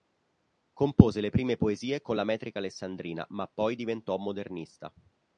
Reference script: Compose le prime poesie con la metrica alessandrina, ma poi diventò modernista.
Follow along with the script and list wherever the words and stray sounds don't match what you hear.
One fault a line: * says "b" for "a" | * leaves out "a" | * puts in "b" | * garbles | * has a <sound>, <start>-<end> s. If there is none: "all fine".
all fine